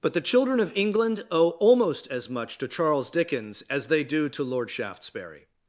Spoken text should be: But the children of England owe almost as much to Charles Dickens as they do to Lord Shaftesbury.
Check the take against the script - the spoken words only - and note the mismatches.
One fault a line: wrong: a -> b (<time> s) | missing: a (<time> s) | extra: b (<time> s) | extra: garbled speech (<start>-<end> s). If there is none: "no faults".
no faults